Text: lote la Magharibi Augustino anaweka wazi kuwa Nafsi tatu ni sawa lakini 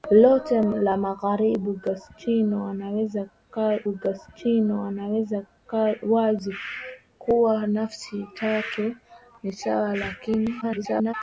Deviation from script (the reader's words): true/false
true